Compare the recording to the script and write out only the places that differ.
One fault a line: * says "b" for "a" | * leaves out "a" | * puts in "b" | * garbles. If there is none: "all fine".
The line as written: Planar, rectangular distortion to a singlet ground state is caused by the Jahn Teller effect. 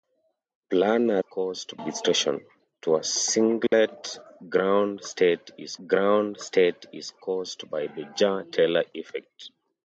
* says "caused" for "rectangular"
* puts in "ground state is"